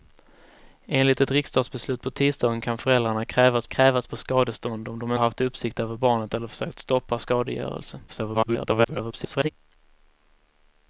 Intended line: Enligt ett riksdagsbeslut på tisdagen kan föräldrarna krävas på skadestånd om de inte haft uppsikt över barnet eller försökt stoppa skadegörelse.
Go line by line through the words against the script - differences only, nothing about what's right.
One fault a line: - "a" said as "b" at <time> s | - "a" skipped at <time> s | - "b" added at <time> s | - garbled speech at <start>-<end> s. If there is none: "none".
- "krävas" added at 3.7 s
- "inte" skipped at 5.1 s
- garbled speech at 8.1-9.5 s